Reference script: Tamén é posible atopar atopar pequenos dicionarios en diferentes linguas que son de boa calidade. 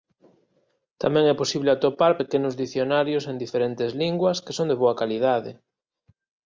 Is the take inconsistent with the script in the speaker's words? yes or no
yes